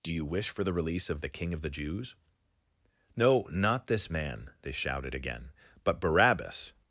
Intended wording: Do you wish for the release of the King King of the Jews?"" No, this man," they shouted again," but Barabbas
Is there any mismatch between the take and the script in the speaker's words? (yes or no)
yes